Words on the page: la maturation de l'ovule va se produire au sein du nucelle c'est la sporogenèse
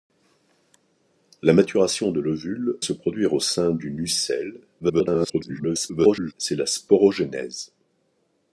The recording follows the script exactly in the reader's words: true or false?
false